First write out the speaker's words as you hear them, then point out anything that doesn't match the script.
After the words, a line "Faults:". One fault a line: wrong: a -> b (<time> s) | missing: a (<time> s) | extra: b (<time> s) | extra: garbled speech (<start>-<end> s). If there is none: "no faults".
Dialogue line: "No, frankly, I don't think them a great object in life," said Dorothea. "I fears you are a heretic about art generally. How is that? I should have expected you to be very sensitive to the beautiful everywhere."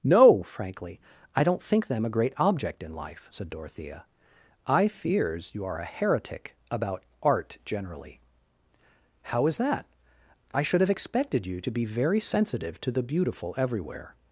"No, frankly, I don't think them a great object in life," said Dorothea. "I fears you are a heretic about art generally. How is that? I should have expected you to be very sensitive to the beautiful everywhere."
Faults:
no faults